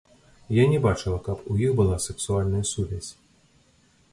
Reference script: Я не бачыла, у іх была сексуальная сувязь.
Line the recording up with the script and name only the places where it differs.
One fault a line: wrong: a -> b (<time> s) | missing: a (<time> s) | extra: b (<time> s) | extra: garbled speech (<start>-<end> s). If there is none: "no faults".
extra: каб (1.3 s)